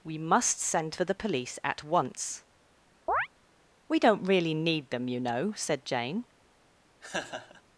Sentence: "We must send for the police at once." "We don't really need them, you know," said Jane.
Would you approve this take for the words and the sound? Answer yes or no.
no